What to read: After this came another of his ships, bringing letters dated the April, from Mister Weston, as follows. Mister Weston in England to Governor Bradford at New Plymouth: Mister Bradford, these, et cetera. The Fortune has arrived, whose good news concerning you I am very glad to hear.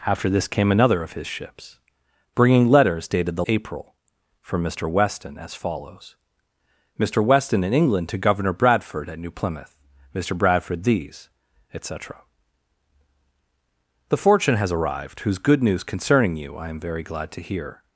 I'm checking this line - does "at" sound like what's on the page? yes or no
yes